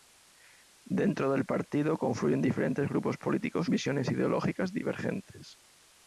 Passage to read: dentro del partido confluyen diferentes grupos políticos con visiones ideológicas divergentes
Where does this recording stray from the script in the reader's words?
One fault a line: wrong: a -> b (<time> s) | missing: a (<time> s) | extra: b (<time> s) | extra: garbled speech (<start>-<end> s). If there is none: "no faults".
missing: con (3.7 s)